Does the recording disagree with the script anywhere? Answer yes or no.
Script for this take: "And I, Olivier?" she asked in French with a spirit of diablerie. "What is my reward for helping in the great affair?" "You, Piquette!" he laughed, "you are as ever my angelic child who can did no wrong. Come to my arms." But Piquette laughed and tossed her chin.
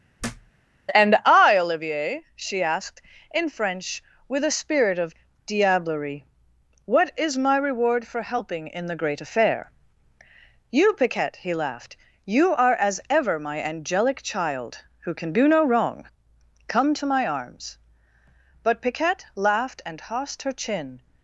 yes